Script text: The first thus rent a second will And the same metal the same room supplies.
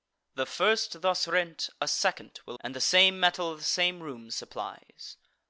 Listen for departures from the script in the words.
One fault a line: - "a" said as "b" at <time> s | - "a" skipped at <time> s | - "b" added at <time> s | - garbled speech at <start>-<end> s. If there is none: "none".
none